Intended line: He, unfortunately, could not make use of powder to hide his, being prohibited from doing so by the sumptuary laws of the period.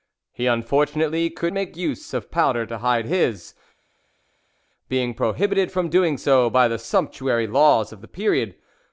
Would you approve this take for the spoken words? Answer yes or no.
no